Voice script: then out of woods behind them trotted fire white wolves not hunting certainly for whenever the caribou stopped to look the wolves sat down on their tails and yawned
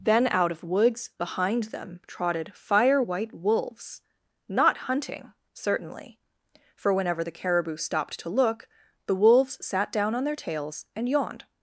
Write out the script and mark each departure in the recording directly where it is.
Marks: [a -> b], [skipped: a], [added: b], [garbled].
then out of woods behind them trotted fire white wolves not hunting certainly for whenever the caribou stopped to look the wolves sat down on their tails and yawned